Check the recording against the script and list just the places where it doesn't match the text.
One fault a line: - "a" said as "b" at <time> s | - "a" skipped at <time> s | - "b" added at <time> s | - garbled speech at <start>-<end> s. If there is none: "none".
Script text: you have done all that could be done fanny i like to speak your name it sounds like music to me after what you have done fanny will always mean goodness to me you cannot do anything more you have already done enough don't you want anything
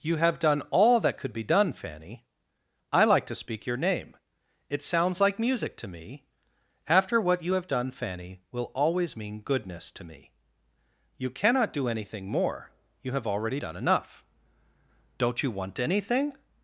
none